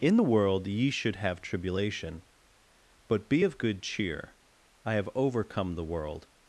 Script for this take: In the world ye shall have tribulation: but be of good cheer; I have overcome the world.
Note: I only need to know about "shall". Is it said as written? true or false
false